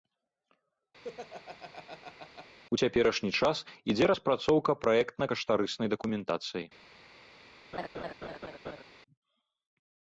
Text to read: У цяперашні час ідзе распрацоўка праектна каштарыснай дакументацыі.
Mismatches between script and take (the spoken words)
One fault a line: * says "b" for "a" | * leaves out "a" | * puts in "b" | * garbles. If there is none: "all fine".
all fine